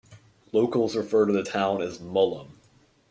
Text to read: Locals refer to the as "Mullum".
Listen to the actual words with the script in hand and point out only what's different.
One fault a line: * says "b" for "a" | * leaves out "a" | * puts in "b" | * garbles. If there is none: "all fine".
* puts in "town"